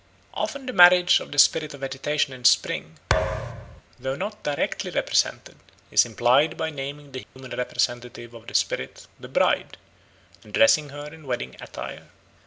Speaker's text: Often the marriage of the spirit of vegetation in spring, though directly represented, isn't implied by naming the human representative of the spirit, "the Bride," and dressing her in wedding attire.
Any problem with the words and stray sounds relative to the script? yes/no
yes